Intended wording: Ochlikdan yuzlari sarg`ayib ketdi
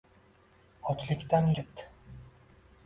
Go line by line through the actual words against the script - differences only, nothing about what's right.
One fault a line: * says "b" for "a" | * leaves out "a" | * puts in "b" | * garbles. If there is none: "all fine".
* leaves out "yuzlari sarg`ayib"